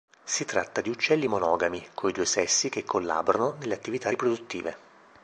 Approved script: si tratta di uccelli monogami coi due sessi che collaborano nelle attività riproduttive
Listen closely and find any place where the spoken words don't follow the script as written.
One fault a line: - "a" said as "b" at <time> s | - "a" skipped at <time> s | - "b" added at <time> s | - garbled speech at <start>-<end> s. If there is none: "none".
none